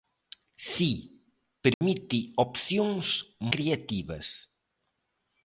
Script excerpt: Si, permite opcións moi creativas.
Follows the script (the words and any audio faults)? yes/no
no